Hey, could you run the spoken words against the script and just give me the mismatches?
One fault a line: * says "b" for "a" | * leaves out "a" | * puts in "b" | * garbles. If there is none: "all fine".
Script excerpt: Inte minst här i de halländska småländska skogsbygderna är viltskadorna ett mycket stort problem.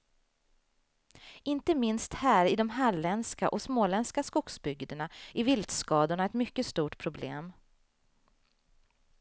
* puts in "och"